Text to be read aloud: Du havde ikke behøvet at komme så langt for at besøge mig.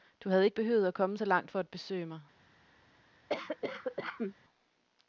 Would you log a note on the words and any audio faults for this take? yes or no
yes